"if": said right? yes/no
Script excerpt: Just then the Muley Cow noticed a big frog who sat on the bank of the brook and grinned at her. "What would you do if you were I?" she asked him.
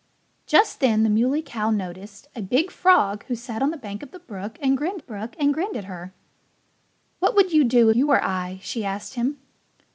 no